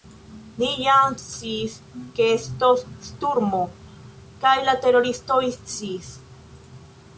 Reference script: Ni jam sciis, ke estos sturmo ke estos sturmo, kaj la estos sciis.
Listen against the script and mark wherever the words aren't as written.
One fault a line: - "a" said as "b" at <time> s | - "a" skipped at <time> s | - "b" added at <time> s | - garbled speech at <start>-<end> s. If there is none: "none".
- "ke estos sturmo" skipped at 3.6 s
- "estos" said as "teroristoj" at 4.9 s